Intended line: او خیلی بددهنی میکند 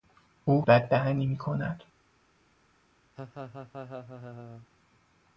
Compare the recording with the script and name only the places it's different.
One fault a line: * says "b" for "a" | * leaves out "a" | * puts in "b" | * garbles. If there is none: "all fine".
* leaves out "خیلی"